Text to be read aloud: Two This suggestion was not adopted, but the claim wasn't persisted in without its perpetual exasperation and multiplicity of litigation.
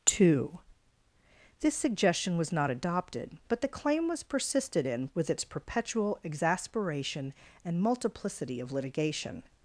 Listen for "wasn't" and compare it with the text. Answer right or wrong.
wrong